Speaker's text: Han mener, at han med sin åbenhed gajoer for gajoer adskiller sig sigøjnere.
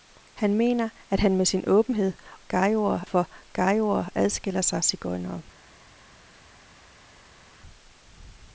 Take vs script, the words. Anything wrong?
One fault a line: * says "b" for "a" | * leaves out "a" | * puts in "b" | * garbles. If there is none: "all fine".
all fine